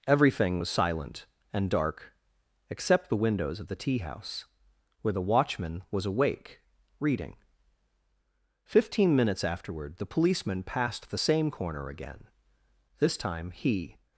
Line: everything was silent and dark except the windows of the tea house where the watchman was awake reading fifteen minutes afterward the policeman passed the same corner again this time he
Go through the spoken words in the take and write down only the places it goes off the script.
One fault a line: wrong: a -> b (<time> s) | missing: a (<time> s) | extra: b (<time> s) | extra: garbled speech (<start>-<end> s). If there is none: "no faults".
no faults